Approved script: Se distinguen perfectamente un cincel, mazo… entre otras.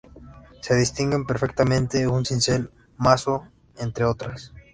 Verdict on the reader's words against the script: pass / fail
pass